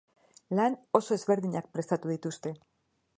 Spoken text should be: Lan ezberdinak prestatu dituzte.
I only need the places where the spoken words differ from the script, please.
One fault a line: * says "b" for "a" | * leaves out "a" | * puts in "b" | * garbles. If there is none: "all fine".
* puts in "oso"